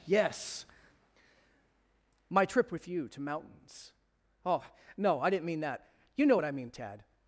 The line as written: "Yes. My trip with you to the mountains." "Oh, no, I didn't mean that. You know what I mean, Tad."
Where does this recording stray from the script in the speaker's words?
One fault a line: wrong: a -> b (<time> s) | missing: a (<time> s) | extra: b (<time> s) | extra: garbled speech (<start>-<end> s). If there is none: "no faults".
missing: the (3.2 s)